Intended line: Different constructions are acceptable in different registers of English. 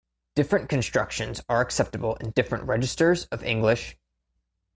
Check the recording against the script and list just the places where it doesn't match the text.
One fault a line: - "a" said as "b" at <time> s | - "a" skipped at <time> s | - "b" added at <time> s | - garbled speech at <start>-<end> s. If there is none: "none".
none